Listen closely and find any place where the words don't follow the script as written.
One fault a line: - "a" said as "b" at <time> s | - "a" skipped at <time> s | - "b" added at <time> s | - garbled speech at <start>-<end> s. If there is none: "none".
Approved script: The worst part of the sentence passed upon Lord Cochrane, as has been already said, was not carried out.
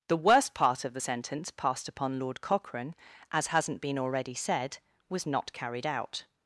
- "has" said as "hasn't" at 3.5 s